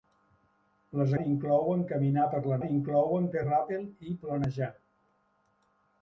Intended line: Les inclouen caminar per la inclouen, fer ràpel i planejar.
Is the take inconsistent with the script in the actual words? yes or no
no